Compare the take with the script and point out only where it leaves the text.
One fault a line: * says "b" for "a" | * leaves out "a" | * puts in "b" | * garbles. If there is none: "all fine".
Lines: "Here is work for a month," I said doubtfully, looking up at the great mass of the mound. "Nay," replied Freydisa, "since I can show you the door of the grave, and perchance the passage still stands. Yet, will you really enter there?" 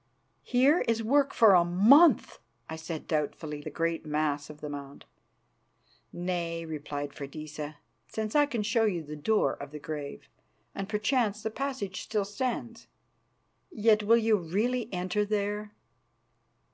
* leaves out "looking up at"